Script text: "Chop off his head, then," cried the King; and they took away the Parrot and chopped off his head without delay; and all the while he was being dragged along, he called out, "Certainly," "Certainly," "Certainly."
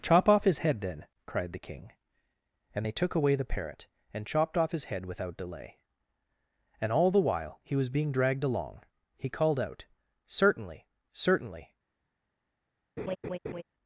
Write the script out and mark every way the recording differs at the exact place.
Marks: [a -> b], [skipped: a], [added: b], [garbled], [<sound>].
"Chop off his head, then," cried the King; and they took away the Parrot and chopped off his head without delay; and all the while he was being dragged along, he called out, "Certainly," "Certainly," [skipped: "Certainly."] [laugh]